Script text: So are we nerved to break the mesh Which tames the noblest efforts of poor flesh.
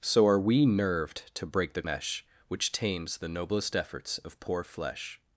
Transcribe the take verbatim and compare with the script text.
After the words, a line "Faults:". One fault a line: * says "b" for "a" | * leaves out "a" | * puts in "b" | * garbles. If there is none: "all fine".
So are we nerved to break the mesh Which tames the noblest efforts of poor flesh.
Faults:
all fine